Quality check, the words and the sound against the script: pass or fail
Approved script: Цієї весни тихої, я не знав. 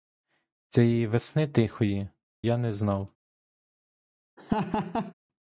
fail